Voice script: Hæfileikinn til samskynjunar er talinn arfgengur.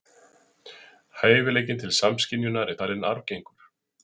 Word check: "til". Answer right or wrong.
right